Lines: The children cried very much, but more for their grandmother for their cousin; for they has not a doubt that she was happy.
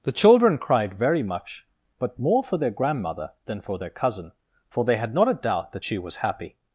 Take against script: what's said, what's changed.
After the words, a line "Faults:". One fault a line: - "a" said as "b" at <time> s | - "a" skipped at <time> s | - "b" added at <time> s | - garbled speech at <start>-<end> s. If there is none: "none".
The children cried very much, but more for their grandmother than for their cousin; for they had not a doubt that she was happy.
Faults:
- "than" added at 3.5 s
- "has" said as "had" at 5.0 s